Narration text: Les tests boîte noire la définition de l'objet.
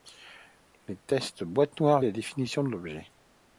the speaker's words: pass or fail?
pass